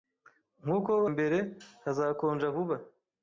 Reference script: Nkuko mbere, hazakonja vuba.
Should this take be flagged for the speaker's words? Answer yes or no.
no